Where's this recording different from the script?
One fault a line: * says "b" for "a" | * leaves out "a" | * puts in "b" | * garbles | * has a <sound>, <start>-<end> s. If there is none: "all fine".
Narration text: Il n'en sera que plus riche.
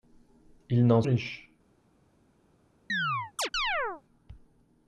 * leaves out "sera que plus"
* has a chirp, 2.9-4.0 s